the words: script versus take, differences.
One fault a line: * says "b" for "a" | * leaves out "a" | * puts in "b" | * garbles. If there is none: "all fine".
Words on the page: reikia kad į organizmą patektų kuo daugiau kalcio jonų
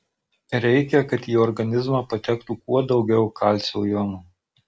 all fine